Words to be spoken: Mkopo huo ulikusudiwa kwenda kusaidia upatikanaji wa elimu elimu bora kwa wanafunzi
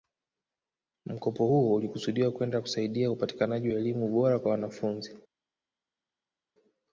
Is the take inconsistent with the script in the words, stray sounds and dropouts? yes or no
yes